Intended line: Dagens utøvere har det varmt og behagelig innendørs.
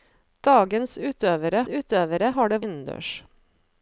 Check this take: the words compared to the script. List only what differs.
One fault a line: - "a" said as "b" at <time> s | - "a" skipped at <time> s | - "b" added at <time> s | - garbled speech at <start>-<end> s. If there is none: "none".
- "utøvere" added at 1.7 s
- "varmt og behagelig" skipped at 2.6 s